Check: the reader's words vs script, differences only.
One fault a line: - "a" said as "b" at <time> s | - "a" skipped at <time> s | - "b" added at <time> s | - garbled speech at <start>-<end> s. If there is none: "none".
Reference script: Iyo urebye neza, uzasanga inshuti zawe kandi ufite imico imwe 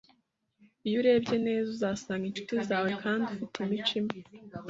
none